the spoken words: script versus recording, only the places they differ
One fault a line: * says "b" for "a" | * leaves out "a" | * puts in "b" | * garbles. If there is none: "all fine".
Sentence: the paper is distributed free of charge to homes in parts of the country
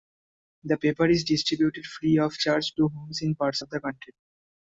all fine